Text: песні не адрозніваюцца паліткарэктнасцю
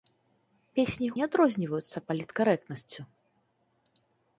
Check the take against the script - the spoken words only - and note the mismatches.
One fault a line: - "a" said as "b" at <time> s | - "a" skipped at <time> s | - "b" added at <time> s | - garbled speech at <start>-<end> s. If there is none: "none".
none